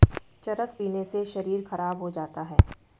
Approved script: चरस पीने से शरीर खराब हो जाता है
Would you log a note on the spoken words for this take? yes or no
no